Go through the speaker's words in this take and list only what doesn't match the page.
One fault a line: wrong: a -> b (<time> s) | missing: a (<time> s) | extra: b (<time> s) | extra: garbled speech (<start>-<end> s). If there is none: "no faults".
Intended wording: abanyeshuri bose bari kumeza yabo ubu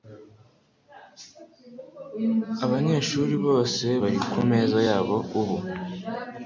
no faults